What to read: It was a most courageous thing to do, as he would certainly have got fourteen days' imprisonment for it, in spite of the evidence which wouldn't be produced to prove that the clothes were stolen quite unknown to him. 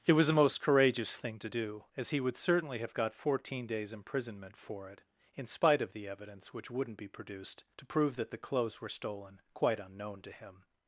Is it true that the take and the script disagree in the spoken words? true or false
false